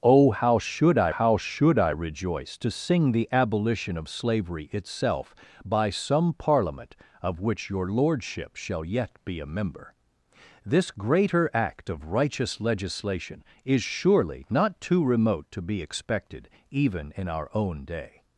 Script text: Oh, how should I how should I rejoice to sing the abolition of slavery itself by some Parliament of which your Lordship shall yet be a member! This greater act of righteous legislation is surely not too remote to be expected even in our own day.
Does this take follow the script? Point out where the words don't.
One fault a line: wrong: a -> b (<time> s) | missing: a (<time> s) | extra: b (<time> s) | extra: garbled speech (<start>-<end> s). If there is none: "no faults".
no faults